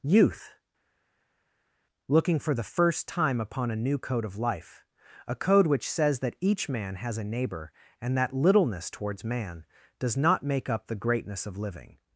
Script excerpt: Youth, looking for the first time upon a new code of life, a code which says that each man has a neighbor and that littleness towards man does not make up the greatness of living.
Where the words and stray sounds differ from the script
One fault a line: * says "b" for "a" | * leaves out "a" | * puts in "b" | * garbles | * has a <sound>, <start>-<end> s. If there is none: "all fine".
all fine